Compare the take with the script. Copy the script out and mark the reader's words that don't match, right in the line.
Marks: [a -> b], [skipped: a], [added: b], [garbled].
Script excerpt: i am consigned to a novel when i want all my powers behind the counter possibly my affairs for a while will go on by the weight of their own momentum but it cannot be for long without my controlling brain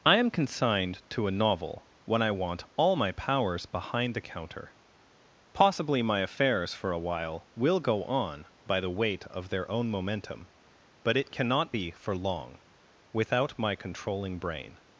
i am consigned to a novel when i want all my powers behind the counter possibly my affairs for a while will go on by the weight of their own momentum but it cannot be for long without my controlling brain